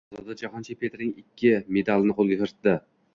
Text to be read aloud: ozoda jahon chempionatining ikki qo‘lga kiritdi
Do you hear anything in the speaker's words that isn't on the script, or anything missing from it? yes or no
yes